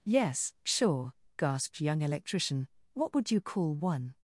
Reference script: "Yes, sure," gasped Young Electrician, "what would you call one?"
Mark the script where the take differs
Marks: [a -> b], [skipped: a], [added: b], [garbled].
"Yes, sure," gasped Young Electrician, "what would you call one?"